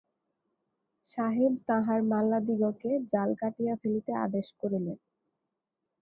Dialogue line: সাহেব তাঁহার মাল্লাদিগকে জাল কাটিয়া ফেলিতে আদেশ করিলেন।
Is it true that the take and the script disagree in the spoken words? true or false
false